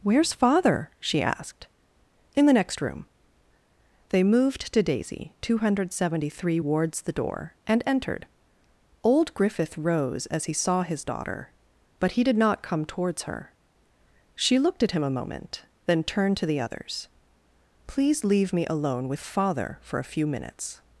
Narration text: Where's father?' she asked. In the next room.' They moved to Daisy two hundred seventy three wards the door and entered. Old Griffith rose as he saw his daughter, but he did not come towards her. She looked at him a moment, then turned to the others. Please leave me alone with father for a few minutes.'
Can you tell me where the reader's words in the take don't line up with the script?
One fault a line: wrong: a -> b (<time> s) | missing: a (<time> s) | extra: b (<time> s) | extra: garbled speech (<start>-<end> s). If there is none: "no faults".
no faults